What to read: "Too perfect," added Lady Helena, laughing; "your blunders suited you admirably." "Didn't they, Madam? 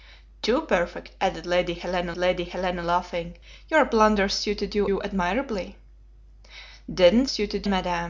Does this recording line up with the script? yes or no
no